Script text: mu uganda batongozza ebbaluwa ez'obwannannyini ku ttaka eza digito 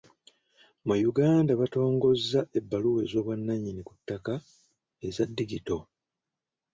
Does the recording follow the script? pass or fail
pass